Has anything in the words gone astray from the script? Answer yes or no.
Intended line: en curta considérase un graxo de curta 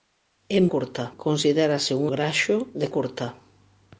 no